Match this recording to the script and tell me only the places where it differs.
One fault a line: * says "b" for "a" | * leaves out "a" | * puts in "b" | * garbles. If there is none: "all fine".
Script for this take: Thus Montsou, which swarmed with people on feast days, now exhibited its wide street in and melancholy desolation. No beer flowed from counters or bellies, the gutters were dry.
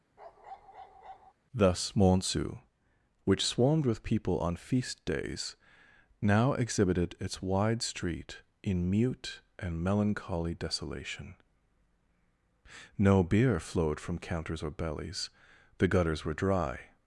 * puts in "mute"